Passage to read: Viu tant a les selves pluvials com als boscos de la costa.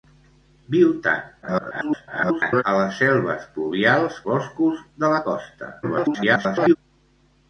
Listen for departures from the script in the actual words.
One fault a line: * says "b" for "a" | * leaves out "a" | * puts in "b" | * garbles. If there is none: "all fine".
* garbles
* leaves out "com als"
* garbles